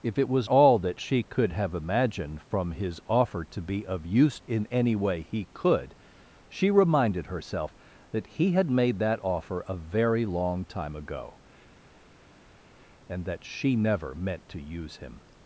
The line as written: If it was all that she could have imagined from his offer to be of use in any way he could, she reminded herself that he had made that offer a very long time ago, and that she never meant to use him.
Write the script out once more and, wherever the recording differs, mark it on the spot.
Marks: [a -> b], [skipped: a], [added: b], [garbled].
If it was all that she could have imagined from his offer to be of use in any way he could, she reminded herself that he had made that offer a very long time ago, and that she never meant to use him.